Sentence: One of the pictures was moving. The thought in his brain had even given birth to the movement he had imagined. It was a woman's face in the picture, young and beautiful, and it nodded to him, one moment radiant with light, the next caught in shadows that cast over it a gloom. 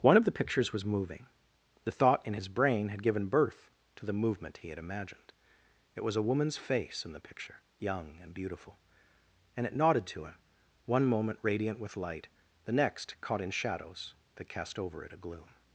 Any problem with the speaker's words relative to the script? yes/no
yes